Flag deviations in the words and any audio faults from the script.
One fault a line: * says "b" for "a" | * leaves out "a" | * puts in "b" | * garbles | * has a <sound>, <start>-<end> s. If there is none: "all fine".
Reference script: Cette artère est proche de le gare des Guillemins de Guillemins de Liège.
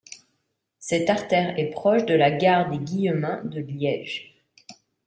* says "la" for "le"
* leaves out "Guillemins de"